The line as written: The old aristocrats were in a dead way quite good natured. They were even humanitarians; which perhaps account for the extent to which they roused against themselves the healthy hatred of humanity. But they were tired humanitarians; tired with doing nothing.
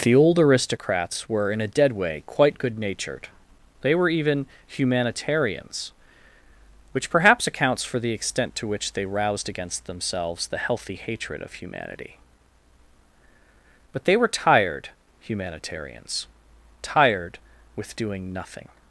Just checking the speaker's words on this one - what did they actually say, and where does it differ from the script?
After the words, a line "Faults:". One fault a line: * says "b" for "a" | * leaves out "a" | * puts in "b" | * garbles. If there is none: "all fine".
The old aristocrats were in a dead way quite good natured. They were even humanitarians; which perhaps accounts for the extent to which they roused against themselves the healthy hatred of humanity. But they were tired humanitarians; tired with doing nothing.
Faults:
* says "accounts" for "account"